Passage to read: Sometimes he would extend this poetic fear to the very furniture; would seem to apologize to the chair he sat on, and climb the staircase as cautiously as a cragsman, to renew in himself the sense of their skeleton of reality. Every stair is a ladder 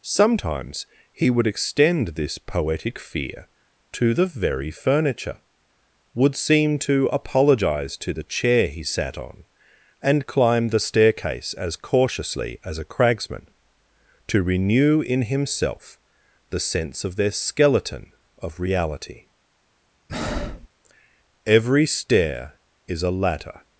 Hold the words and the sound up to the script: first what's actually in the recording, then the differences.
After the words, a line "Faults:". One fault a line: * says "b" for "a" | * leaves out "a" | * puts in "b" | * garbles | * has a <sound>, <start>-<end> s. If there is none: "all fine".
Sometimes he would extend this poetic fear to the very furniture; would seem to apologize to the chair he sat on, and climb the staircase as cautiously as a cragsman, to renew in himself the sense of their skeleton of reality. Every stair is a ladder
Faults:
* has a breath, 20.1-20.7 s